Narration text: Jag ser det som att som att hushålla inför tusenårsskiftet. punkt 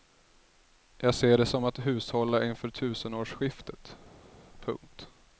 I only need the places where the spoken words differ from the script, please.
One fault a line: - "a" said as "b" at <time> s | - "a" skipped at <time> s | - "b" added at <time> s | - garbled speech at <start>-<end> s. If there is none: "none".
- "som att" skipped at 1.9 s